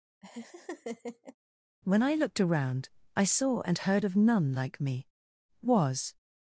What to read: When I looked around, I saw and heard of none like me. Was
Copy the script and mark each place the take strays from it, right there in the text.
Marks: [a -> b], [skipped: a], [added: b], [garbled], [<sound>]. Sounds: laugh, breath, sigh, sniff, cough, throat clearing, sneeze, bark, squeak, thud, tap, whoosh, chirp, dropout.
[laugh] When I looked around, I saw and heard of none like me. Was